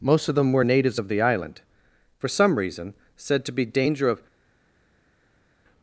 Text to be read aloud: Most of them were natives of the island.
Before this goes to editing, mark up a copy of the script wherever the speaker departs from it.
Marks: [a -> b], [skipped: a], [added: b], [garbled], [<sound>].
Most of them were natives of the island. [added: For some reason said to be danger of]